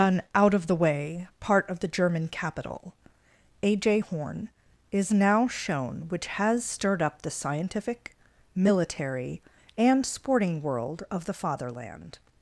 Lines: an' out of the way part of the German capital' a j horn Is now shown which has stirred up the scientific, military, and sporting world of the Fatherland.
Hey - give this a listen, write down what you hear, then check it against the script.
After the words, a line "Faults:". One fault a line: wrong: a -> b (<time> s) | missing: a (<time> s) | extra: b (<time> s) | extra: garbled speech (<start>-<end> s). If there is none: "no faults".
an' out of the way part of the German capital' a j horn Is now shown which has stirred up the scientific, military, and sporting world of the Fatherland.
Faults:
no faults